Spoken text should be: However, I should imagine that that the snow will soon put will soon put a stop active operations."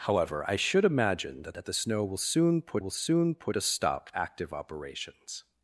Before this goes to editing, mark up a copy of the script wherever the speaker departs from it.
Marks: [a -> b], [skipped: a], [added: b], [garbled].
However, I should imagine that that the snow will soon put will soon put a stop active operations."